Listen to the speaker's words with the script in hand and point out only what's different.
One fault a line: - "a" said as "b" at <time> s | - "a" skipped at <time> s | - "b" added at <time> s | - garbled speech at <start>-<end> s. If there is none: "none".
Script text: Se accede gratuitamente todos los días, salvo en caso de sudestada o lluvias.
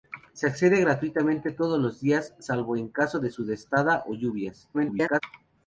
- garbled speech at 4.7-5.2 s